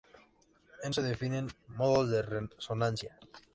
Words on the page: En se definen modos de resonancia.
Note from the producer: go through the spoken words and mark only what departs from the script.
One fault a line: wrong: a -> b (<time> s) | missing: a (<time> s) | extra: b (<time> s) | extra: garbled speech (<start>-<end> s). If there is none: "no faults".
no faults